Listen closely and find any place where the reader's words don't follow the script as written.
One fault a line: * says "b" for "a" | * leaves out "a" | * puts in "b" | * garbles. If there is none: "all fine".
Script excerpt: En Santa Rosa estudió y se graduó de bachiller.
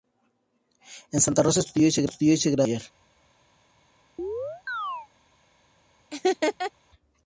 all fine